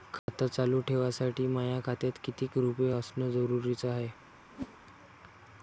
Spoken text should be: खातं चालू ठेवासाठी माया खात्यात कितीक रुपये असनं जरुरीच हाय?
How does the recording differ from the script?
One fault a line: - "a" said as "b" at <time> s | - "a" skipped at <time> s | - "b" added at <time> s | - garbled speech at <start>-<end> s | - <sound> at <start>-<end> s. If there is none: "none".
- dropout at 0.2-0.3 s
- whoosh at 4.5-4.8 s